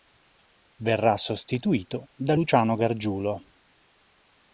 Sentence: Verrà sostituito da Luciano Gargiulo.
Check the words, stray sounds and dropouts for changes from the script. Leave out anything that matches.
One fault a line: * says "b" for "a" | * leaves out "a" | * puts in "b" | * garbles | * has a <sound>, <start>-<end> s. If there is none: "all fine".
all fine